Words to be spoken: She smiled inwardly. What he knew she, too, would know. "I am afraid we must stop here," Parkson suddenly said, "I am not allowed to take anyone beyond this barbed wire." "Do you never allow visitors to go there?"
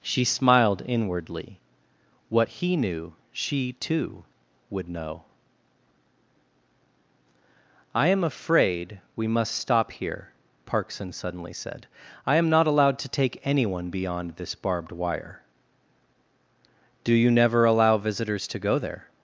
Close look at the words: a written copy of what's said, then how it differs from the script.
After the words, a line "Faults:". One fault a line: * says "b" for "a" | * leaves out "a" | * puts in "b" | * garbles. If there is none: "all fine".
She smiled inwardly. What he knew she, too, would know. "I am afraid we must stop here," Parkson suddenly said, "I am not allowed to take anyone beyond this barbed wire." "Do you never allow visitors to go there?"
Faults:
all fine